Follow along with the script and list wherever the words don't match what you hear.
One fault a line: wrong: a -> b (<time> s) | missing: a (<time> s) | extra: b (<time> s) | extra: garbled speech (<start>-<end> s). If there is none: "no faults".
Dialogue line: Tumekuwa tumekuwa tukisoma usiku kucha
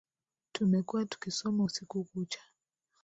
missing: tumekuwa (1.1 s)